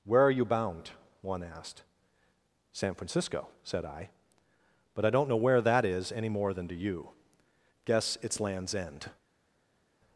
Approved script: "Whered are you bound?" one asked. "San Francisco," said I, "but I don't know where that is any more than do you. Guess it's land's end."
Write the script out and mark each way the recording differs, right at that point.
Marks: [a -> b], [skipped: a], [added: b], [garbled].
["Whered -> Where] are you bound?" one asked. "San Francisco," said I, "but I don't know where that is any more than do you. Guess it's land's end."